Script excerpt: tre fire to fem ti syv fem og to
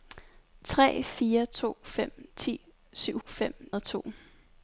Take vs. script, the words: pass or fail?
pass